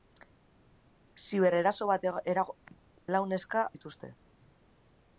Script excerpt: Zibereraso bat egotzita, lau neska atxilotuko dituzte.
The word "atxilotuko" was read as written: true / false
false